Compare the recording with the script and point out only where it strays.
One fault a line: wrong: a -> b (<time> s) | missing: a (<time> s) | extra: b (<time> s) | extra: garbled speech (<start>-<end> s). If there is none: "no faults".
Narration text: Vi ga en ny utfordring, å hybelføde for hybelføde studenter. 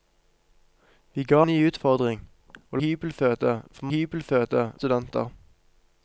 no faults